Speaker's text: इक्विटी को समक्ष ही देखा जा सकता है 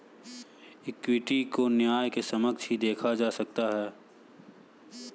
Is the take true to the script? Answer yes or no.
no